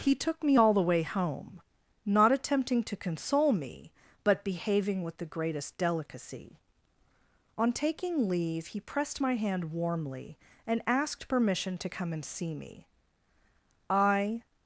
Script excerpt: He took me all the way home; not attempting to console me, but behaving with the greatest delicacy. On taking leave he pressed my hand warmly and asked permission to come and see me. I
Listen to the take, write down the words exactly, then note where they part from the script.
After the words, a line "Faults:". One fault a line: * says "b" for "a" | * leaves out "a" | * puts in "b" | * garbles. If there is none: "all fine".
He took me all the way home; not attempting to console me, but behaving with the greatest delicacy. On taking leave he pressed my hand warmly and asked permission to come and see me. I
Faults:
all fine